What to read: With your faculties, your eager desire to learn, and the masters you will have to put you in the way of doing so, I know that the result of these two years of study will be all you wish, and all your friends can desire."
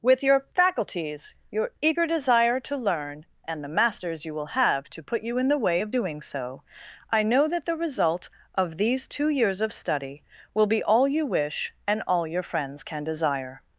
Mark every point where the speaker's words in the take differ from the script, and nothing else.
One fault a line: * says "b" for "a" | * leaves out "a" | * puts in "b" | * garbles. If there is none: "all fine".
all fine